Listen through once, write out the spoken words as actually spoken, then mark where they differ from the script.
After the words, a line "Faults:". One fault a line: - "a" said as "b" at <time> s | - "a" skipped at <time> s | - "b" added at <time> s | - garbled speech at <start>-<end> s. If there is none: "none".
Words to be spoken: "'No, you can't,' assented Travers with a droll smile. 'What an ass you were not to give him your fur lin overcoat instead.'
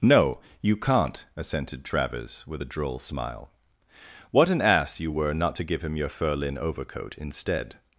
"'No, you can't,' assented Travers with a droll smile. 'What an ass you were not to give him your fur lin overcoat instead.'
Faults:
none